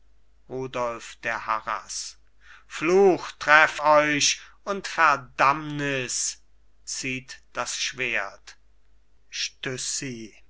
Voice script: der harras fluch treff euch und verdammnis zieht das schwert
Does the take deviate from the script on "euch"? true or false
false